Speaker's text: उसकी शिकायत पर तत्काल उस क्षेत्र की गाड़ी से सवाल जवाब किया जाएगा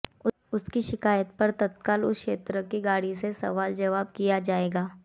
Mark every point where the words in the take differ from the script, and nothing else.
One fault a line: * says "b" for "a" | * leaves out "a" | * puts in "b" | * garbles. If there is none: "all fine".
all fine